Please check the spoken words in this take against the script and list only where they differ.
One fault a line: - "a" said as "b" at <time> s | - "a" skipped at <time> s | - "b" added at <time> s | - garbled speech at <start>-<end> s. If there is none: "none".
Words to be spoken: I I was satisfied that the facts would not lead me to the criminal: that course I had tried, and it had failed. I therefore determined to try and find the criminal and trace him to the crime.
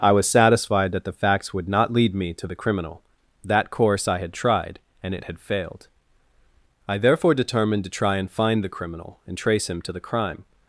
- "I" skipped at 0.1 s